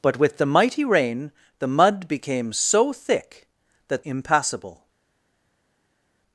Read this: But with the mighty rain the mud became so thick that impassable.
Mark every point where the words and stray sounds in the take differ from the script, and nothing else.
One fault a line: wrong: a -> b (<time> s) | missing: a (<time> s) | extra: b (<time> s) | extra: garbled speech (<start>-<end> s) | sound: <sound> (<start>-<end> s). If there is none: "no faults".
no faults